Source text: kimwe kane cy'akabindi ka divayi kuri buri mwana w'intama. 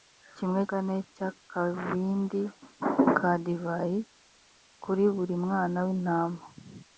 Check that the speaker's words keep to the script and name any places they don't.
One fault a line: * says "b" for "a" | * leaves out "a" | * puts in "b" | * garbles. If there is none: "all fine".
all fine